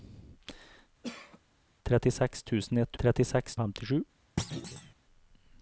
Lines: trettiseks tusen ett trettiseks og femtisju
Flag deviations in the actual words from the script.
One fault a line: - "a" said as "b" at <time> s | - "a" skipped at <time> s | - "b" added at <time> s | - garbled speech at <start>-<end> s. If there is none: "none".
none